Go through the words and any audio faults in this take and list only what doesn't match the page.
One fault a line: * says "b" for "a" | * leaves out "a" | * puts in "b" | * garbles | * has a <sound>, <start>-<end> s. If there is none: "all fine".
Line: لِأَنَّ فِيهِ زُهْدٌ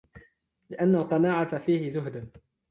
* puts in "الْقَنَاعَةَ"